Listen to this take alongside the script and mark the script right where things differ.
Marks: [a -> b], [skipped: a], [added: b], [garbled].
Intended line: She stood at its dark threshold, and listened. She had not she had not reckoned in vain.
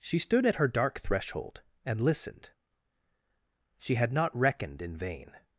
She stood at [its -> her] dark threshold, and listened. She had not [skipped: she had not] reckoned in vain.